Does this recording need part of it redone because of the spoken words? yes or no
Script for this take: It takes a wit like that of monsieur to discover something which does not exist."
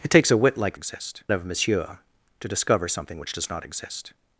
yes